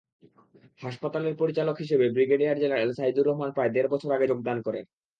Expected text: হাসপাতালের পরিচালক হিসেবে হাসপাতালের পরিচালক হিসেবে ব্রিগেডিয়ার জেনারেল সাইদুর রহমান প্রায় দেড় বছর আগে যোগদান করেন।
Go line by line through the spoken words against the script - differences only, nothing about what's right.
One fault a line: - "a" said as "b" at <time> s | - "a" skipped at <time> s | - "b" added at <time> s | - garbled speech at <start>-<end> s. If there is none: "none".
- "হাসপাতালের পরিচালক হিসেবে" skipped at 2.0 s